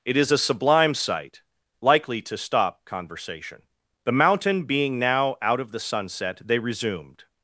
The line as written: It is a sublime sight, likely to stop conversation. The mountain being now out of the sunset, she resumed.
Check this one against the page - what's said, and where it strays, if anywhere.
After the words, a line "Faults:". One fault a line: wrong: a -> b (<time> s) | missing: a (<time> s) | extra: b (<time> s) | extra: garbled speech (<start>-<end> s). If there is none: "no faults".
It is a sublime sight, likely to stop conversation. The mountain being now out of the sunset, they resumed.
Faults:
wrong: she -> they (6.4 s)